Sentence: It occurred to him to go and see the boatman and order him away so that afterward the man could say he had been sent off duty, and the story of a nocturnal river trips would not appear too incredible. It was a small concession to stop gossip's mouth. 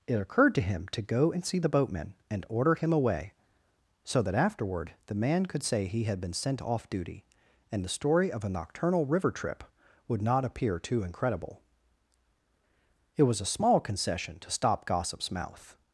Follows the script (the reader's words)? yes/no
no